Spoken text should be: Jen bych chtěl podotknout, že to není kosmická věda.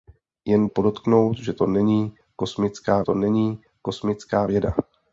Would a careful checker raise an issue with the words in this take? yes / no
yes